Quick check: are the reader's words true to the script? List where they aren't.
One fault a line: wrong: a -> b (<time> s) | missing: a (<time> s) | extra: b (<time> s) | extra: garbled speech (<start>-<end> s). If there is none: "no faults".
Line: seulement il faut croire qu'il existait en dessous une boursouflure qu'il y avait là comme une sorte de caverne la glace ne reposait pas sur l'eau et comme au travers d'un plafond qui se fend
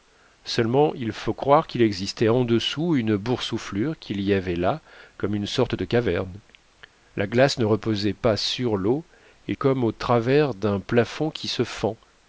no faults